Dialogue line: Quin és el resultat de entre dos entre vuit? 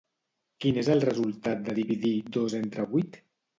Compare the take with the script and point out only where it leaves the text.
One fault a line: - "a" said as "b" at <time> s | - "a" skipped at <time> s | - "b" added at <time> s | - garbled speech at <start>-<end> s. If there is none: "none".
- "entre" said as "dividir" at 1.8 s